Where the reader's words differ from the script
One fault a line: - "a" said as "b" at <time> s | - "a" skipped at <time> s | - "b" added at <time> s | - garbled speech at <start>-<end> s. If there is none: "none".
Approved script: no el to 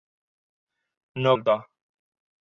none